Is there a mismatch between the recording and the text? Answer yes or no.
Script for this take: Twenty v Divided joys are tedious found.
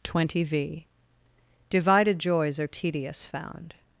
no